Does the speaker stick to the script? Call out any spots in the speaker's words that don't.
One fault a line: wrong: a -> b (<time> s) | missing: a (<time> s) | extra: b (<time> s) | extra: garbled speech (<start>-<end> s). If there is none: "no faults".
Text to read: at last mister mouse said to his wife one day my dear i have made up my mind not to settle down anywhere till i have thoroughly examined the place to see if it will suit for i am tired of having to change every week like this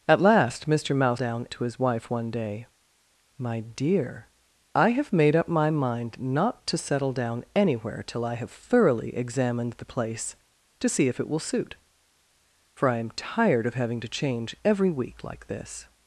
wrong: said -> down (1.1 s)